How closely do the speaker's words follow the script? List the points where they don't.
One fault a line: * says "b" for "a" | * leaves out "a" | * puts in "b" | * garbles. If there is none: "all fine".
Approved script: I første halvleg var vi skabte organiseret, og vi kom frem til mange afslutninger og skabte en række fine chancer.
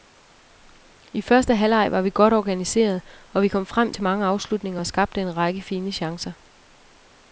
* says "godt" for "skabte"